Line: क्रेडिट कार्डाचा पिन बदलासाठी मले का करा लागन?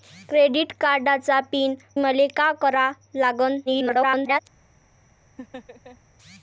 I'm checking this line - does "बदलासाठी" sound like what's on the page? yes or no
no